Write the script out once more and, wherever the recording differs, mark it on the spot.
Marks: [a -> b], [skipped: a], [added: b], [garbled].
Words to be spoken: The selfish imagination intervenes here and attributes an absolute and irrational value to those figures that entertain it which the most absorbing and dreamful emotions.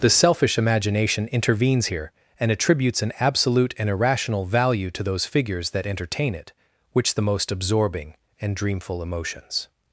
The selfish imagination intervenes here and attributes an absolute and irrational value to those figures that entertain it which the most absorbing and dreamful emotions.